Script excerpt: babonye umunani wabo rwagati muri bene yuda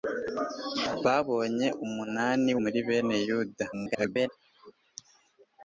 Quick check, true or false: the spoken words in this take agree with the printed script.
false